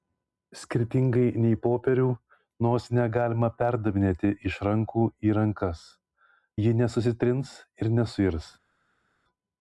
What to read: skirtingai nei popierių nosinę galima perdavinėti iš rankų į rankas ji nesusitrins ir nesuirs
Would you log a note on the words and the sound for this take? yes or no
no